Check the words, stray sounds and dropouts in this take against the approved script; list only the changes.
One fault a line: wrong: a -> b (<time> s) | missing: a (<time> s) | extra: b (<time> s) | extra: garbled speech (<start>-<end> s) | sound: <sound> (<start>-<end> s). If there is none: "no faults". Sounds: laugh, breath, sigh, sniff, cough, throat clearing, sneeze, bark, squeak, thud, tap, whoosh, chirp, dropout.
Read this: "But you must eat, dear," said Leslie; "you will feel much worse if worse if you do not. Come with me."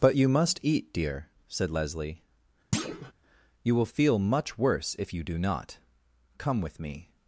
sound: thud (2.7-3.1 s)
missing: worse if (5.1 s)